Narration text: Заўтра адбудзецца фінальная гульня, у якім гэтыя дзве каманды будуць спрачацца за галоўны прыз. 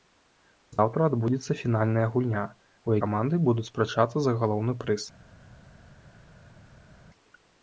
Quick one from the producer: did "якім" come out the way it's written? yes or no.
no